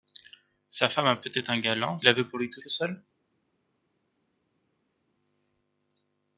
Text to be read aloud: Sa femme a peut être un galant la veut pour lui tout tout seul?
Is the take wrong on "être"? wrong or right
right